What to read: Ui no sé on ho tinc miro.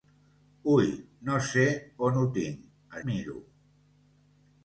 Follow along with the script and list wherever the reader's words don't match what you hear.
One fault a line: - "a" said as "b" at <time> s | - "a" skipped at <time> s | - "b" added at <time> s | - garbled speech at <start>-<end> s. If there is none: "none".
none